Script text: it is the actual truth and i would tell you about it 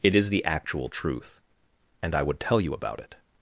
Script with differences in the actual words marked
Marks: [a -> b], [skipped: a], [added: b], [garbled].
it is the actual truth and i would tell you about it